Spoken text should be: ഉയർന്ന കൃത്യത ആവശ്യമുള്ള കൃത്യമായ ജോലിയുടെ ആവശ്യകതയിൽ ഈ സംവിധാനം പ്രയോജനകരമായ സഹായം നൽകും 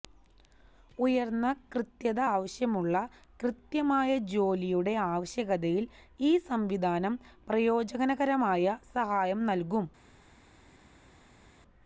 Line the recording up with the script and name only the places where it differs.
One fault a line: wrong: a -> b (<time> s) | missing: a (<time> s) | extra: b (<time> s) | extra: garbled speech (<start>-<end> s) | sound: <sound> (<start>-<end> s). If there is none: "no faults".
no faults